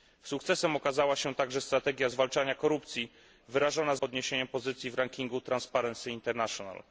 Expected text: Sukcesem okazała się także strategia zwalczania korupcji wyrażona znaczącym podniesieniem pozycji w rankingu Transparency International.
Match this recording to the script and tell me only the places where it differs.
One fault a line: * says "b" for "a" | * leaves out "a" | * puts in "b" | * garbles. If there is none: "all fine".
* leaves out "znaczącym"